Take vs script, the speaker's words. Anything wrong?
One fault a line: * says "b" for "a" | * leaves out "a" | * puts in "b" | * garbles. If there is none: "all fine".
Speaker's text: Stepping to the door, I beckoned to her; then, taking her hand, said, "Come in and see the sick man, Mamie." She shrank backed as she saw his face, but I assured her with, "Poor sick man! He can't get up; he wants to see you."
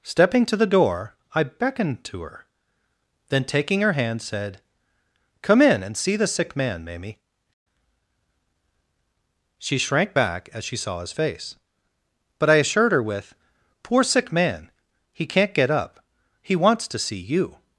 * says "back" for "backed"